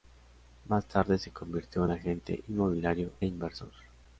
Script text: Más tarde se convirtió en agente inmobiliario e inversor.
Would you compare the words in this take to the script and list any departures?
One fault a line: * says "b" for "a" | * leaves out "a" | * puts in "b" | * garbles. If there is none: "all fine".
* leaves out "e"